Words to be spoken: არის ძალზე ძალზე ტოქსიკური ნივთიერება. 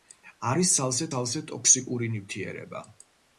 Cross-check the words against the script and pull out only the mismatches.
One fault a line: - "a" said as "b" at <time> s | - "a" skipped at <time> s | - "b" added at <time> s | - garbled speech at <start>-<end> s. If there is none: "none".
none